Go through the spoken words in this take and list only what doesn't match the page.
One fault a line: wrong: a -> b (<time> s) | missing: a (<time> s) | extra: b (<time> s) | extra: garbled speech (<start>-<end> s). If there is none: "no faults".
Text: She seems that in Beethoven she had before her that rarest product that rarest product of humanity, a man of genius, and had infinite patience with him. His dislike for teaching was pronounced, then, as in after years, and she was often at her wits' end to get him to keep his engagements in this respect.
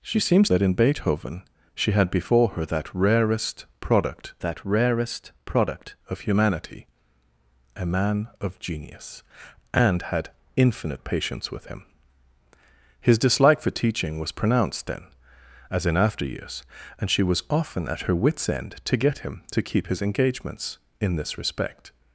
no faults